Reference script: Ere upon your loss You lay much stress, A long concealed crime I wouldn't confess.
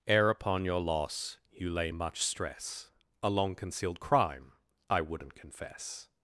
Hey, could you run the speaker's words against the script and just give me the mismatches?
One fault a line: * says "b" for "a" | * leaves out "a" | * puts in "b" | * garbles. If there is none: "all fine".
all fine